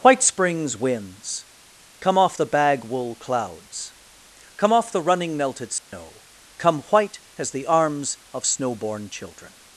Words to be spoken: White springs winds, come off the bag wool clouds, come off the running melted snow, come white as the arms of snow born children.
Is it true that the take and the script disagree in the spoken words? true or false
false